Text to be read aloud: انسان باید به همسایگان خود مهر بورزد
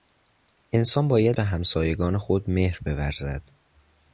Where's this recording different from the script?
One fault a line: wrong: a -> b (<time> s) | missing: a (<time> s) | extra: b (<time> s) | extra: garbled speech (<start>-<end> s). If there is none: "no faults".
no faults